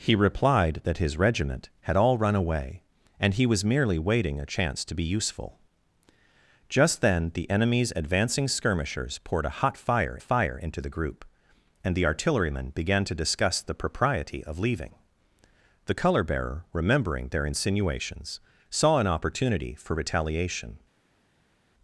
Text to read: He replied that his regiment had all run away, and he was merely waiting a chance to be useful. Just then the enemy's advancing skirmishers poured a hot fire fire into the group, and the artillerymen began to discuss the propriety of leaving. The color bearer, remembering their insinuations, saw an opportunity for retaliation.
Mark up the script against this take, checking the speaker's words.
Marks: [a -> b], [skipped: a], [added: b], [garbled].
He replied that his regiment had all run away, and he was merely waiting a chance to be useful. Just then the enemy's advancing skirmishers poured a hot fire fire into the group, and the artillerymen began to discuss the propriety of leaving. The color bearer, remembering their insinuations, saw an opportunity for retaliation.